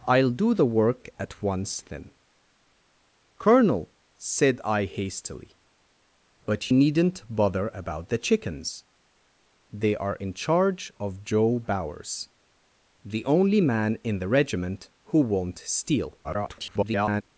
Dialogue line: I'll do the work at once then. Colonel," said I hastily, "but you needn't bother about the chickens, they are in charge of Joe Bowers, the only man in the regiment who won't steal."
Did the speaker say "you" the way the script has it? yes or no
no